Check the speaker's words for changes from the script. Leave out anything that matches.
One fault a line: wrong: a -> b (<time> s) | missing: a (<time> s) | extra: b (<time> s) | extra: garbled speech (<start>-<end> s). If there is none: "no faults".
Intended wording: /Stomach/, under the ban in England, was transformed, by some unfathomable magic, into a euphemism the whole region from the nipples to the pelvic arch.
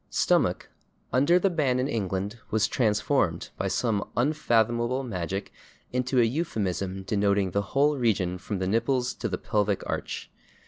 extra: denoting (7.0 s)